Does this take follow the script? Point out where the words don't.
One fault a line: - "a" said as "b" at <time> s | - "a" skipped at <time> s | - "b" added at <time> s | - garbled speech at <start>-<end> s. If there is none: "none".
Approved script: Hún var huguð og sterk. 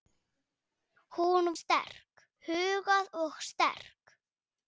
- "var" said as "sterk" at 1.6 s